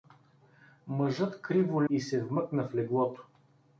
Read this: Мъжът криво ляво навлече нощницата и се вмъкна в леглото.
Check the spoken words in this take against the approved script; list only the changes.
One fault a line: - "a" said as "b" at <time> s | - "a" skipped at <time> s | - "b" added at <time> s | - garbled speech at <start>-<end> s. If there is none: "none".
- "ляво навлече нощницата" skipped at 1.8 s